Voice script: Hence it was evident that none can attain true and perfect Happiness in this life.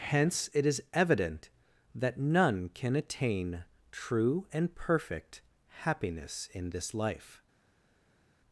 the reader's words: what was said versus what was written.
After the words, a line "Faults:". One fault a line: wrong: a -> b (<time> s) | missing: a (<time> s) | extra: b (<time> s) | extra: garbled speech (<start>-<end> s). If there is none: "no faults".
Hence it is evident that none can attain true and perfect Happiness in this life.
Faults:
wrong: was -> is (0.7 s)